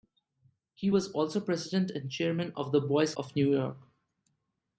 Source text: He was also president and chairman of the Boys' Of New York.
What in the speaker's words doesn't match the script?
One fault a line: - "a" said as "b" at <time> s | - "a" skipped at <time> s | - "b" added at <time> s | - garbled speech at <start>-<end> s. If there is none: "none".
none